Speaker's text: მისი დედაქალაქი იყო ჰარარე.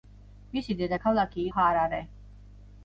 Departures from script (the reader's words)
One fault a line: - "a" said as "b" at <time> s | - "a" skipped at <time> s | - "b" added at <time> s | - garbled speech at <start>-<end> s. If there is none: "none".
- "იყო" skipped at 1.4 s